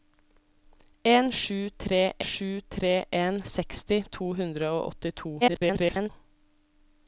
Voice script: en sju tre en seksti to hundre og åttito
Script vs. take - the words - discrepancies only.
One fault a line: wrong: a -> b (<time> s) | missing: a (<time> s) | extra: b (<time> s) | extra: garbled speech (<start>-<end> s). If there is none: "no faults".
extra: sju tre (2.3 s)
extra: garbled speech (5.4-6.1 s)